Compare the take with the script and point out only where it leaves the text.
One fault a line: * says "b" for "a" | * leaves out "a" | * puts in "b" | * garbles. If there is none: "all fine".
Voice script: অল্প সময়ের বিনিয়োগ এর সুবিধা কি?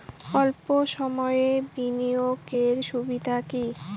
all fine